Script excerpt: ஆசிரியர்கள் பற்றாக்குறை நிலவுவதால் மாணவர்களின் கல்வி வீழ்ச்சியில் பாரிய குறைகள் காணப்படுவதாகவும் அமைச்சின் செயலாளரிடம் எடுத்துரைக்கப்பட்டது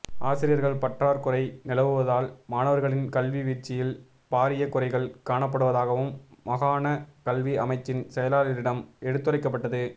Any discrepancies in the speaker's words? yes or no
yes